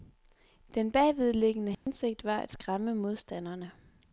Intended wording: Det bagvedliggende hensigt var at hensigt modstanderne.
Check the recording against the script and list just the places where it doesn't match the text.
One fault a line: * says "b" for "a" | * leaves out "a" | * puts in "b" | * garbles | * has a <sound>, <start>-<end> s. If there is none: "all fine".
* says "Den" for "Det"
* has a dropout, 1.7-1.9 s
* says "skræmme" for "hensigt"